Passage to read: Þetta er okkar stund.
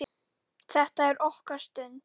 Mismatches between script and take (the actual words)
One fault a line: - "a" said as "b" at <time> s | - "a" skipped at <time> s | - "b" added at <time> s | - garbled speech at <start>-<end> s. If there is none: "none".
none